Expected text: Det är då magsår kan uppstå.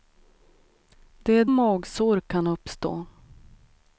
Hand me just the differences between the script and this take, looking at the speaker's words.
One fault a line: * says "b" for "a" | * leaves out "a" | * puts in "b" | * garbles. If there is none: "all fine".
* leaves out "då"